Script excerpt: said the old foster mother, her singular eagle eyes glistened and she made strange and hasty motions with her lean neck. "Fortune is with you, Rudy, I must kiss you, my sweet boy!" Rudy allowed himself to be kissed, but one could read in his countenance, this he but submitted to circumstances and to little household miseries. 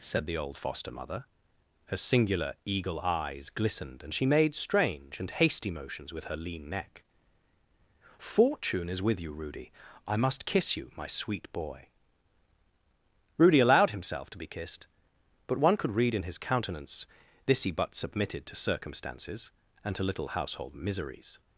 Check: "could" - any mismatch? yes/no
no